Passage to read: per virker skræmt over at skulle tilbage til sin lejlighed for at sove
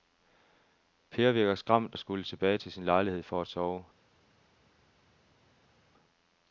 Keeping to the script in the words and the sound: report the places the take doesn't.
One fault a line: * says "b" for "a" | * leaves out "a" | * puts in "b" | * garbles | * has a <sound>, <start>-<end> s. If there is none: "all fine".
* leaves out "over"